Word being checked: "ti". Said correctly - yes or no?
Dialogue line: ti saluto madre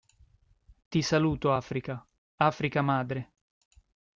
yes